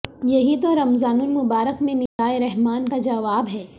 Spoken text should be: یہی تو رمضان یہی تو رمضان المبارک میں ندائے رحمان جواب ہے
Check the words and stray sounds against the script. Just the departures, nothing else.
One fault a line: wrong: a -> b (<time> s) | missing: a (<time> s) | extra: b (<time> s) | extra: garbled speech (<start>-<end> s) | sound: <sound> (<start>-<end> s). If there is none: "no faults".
missing: یہی تو رمضان (1.2 s)
sound: dropout (2.1-2.2 s)
extra: کا (2.9 s)